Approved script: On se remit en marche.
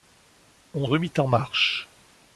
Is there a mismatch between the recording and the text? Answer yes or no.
yes